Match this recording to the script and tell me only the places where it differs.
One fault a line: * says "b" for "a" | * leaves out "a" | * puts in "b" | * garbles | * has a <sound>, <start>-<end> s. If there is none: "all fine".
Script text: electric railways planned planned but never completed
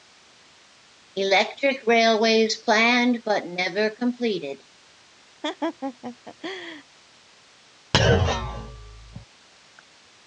* leaves out "planned"
* has a laugh, 5.4-6.8 s
* has a thud, 7.9-9.3 s